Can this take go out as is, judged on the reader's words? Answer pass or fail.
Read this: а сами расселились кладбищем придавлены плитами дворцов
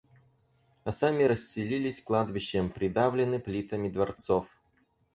pass